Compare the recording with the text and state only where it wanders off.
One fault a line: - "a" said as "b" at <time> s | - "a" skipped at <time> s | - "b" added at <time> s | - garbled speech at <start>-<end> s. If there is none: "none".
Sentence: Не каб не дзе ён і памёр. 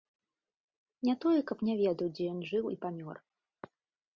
- "тое" added at 1.2 s
- "ведаў" added at 1.8 s
- "жыў" added at 2.5 s